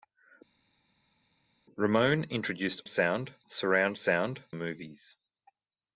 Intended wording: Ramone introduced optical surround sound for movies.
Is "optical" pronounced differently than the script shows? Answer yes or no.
yes